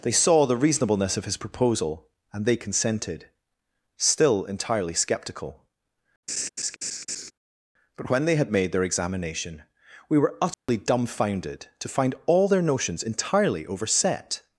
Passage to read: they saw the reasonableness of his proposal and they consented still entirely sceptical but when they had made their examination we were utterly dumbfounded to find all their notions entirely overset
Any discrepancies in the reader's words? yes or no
no